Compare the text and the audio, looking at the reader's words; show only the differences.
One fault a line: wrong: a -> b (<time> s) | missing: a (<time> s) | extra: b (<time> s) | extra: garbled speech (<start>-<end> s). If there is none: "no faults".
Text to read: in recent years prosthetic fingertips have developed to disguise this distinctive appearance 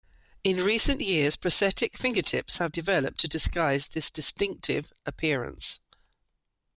no faults